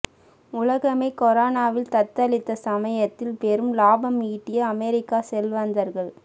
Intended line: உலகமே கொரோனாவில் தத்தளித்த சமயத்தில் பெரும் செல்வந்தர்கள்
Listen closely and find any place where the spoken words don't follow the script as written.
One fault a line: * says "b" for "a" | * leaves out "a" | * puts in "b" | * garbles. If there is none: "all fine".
* puts in "லாபம் ஈட்டிய அமெரிக்க"